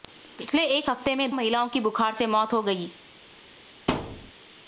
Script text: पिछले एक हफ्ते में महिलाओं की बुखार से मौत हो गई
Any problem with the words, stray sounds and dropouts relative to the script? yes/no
yes